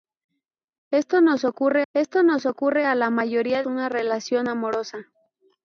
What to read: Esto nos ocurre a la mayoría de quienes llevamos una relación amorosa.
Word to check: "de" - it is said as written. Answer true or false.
false